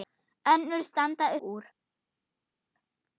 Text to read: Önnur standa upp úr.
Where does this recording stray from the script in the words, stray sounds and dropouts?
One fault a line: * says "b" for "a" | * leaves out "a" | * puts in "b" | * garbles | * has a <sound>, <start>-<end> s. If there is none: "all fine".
* leaves out "upp"